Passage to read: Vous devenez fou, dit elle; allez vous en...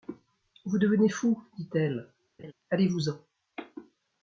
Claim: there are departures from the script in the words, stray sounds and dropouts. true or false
true